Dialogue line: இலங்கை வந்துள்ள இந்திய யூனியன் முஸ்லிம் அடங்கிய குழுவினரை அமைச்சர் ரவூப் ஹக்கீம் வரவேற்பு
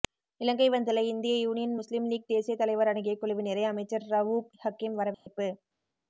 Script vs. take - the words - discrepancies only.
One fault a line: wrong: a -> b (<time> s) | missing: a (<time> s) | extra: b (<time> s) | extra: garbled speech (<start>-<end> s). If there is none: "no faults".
extra: லீக் தேசிய தலைவர் (2.1 s)